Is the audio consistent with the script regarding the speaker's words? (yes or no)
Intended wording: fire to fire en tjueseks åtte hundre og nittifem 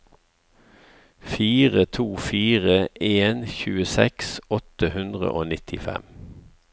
yes